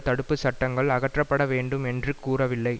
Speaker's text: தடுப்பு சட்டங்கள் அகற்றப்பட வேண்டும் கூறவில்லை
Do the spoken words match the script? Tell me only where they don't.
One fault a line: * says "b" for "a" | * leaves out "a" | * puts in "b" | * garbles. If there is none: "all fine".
* puts in "என்று"